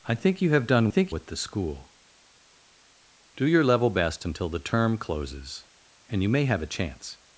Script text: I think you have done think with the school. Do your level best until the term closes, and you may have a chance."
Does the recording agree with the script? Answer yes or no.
yes